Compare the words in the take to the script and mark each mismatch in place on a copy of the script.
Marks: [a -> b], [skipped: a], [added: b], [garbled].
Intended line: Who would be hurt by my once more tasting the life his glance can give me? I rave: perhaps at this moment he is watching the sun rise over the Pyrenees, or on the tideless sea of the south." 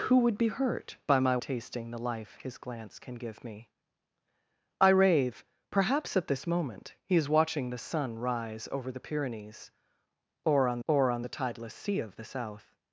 Who would be hurt by my [skipped: once more] tasting the life his glance can give me? I rave: perhaps at this moment he is watching the sun rise over the Pyrenees, or on [added: or on] the tideless sea of the south."